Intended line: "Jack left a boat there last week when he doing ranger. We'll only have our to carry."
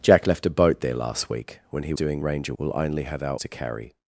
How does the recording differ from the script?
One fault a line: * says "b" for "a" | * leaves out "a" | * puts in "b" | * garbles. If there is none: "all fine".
all fine